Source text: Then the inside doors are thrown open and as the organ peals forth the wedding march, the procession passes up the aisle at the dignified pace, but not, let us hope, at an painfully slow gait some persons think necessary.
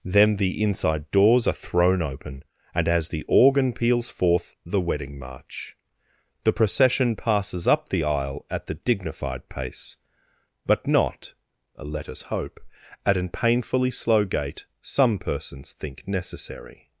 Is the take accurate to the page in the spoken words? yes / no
yes